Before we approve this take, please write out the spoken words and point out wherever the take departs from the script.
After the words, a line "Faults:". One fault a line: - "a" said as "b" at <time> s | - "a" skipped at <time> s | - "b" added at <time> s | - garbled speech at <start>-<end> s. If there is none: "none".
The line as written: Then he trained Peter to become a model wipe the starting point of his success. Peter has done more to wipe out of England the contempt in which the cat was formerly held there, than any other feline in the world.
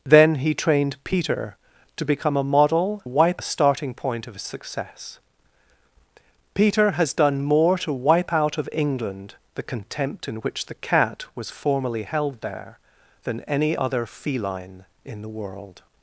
Then he trained Peter to become a model wipe the starting point of his success. Peter has done more to wipe out of England the contempt in which the cat was formerly held there, than any other feline in the world.
Faults:
none